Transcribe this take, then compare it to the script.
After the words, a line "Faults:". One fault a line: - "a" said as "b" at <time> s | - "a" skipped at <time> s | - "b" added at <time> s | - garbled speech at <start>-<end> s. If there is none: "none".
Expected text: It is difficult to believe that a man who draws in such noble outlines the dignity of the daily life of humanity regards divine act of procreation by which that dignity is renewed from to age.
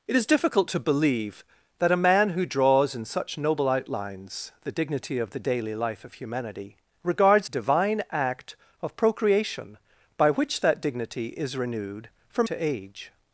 It is difficult to believe that a man who draws in such noble outlines the dignity of the daily life of humanity regards divine act of procreation by which that dignity is renewed from to age.
Faults:
none